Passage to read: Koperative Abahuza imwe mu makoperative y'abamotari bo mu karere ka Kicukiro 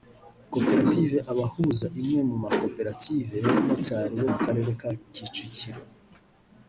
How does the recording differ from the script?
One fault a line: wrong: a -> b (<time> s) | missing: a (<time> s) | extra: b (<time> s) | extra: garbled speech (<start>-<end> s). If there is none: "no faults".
no faults